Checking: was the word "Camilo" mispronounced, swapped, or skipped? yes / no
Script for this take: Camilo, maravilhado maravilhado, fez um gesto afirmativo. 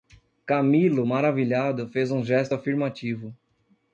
no